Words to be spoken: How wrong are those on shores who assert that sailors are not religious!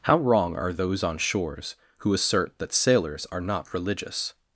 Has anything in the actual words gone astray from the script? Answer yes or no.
no